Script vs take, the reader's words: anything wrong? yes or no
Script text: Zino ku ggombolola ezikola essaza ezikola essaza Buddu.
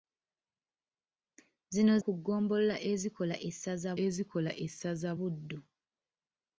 no